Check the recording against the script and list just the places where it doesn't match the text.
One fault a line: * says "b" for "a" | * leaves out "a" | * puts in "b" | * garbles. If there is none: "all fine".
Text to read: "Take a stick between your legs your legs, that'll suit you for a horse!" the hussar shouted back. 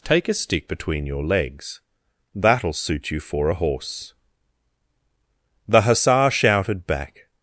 * leaves out "your legs"